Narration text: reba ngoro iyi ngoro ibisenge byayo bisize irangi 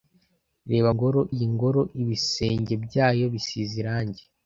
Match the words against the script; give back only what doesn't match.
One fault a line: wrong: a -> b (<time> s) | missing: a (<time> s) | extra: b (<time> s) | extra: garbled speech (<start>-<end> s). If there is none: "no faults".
no faults